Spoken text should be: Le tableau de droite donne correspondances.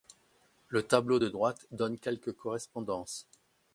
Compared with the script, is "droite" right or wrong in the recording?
right